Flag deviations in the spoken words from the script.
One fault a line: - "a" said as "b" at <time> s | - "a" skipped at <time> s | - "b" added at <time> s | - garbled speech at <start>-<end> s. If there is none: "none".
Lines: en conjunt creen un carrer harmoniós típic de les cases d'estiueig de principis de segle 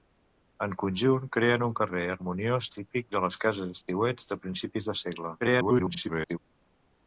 - garbled speech at 5.4-6.4 s